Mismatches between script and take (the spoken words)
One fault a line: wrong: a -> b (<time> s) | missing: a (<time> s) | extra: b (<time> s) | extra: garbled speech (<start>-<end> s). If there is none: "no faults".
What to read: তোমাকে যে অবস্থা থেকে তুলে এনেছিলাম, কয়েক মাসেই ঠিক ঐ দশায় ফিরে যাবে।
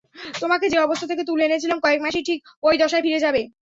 no faults